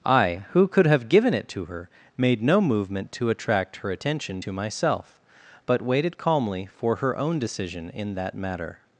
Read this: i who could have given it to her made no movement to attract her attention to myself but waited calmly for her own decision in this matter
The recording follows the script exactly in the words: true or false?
false